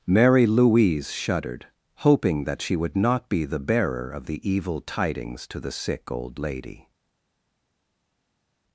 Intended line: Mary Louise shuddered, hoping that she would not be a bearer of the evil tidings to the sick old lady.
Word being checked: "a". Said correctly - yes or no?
no